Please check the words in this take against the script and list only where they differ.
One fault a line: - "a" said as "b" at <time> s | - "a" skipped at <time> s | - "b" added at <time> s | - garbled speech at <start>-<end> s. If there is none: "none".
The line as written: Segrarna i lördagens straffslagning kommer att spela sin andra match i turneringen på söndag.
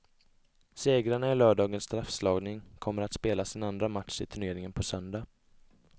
none